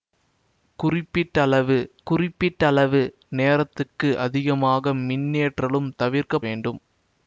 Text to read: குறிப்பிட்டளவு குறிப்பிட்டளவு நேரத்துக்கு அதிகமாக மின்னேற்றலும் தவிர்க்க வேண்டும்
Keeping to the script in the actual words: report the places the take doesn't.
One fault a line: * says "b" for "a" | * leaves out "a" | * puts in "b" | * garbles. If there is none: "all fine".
all fine